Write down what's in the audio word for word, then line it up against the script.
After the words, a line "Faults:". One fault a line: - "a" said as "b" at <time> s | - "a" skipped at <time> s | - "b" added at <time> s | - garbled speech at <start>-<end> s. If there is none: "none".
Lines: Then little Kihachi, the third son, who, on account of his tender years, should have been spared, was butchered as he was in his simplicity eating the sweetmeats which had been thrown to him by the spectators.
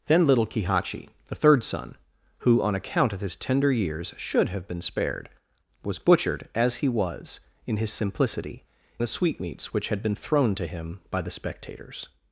Then little Kihachi, the third son, who, on account of his tender years, should have been spared, was butchered as he was in his simplicity the sweetmeats which had been thrown to him by the spectators.
Faults:
- "eating" skipped at 8.6 s